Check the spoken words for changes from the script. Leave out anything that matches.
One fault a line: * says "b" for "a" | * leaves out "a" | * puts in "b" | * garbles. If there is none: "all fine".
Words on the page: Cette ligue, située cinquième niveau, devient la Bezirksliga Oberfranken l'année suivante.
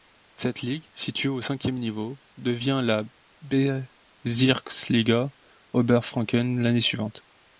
* puts in "au"